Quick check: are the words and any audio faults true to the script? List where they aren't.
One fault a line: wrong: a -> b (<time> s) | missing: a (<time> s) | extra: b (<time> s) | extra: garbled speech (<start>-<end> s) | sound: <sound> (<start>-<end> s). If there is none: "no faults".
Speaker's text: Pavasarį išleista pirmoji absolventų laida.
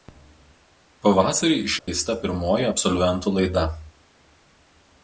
sound: dropout (1.8-1.9 s)